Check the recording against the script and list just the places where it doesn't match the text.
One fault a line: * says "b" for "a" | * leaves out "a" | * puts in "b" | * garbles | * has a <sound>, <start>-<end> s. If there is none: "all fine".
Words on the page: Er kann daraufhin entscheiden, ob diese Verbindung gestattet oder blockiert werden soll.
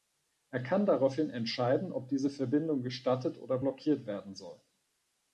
all fine